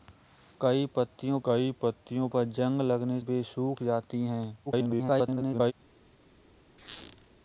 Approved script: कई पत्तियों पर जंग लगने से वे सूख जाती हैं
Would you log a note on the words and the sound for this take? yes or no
yes